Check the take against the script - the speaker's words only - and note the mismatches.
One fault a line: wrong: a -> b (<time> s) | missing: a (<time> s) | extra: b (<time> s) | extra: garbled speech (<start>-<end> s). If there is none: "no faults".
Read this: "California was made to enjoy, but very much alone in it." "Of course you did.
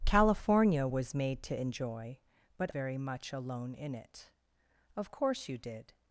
no faults